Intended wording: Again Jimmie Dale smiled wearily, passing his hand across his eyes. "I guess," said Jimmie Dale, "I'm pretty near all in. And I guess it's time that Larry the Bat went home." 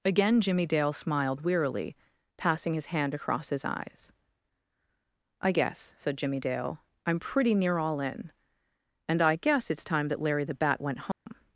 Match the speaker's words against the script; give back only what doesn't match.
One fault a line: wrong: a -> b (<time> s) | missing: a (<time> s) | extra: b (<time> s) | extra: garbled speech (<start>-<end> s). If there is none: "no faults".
no faults